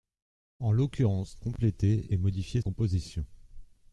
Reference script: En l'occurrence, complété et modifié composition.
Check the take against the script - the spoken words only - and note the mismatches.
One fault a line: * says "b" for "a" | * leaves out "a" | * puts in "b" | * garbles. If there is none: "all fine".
all fine